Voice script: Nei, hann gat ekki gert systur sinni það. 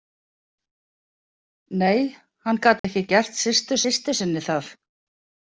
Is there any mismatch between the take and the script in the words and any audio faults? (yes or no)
yes